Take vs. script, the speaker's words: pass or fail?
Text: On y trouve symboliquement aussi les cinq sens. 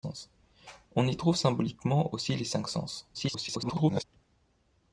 fail